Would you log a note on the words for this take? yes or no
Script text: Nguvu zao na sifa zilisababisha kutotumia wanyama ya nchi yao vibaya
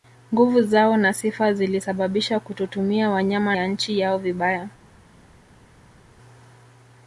no